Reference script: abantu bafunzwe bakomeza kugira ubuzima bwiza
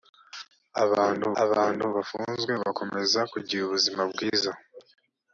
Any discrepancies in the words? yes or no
yes